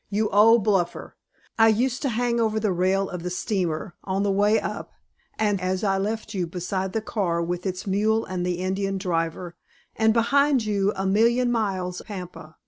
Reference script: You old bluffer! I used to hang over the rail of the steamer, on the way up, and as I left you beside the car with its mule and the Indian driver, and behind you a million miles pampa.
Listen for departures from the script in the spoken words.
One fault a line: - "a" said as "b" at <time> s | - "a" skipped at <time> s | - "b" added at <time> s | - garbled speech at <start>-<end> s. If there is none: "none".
none